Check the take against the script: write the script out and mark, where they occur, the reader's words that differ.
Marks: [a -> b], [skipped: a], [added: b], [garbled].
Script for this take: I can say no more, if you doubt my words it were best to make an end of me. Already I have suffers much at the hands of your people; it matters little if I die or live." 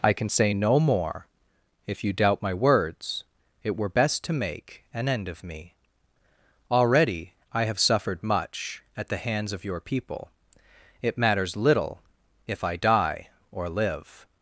I can say no more, if you doubt my words it were best to make an end of me. Already I have [suffers -> suffered] much at the hands of your people; it matters little if I die or live."